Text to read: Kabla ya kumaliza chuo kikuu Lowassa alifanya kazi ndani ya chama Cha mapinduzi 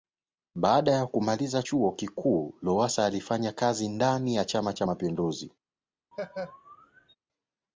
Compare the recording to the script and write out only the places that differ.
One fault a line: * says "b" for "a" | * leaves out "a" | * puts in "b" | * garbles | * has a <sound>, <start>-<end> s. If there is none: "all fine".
* says "Baada" for "Kabla"
* has a laugh, 6.1-7.2 s